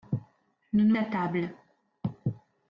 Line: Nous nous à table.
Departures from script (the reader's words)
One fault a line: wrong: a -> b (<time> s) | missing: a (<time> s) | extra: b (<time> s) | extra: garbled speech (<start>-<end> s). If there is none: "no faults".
no faults